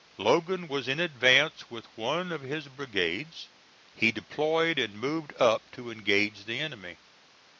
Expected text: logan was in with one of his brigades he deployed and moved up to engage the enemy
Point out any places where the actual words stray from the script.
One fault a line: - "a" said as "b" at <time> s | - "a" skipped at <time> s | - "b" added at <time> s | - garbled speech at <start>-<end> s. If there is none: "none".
- "advance" added at 1.0 s